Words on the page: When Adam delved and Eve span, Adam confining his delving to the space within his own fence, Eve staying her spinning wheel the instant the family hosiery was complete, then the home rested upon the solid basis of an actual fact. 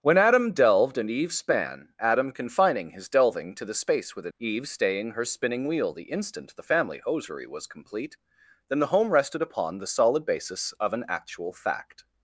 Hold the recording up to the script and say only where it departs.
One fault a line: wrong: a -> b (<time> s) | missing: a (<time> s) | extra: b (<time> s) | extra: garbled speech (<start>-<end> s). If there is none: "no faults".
missing: his own fence (4.3 s)